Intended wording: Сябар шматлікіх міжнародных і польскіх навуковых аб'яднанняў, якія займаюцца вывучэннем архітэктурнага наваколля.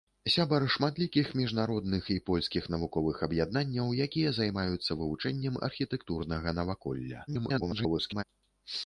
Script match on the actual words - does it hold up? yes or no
no